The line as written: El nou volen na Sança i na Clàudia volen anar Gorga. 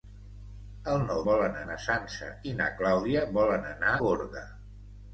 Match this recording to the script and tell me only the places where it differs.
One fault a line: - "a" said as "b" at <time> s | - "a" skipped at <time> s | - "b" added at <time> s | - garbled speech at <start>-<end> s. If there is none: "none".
none